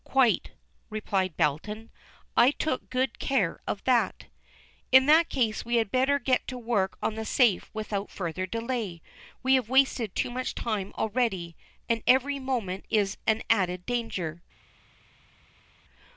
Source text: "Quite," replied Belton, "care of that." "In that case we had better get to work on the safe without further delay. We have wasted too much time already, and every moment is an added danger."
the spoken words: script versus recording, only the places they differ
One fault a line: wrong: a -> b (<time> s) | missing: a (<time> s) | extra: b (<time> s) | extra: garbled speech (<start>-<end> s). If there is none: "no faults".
extra: I took good (2.4 s)